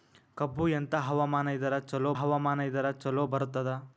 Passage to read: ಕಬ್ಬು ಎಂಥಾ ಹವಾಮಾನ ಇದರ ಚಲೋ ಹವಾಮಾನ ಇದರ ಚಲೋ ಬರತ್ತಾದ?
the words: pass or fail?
pass